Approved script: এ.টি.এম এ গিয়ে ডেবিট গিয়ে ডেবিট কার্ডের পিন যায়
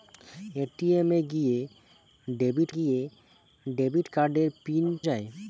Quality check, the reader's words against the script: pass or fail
pass